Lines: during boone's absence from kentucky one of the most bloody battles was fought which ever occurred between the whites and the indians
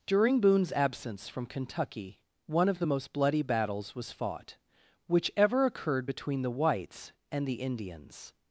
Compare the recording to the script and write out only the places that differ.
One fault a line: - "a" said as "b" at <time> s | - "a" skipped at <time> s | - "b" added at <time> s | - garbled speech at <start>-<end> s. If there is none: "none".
none